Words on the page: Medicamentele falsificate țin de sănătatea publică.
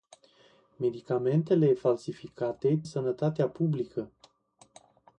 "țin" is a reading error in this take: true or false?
true